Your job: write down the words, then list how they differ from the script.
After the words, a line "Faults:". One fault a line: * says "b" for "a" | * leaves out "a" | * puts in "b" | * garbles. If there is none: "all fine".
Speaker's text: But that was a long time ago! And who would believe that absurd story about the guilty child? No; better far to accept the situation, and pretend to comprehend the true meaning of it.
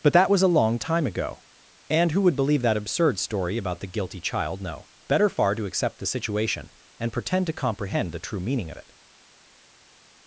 But that was a long time ago! And who would believe that absurd story about the guilty child? No; better far to accept the situation, and pretend to comprehend the true meaning of it.
Faults:
all fine